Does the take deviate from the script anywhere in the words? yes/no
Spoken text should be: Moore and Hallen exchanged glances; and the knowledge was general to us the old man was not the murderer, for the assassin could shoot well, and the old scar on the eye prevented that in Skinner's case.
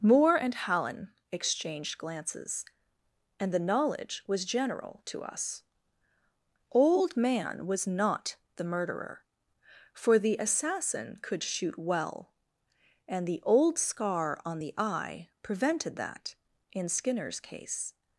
yes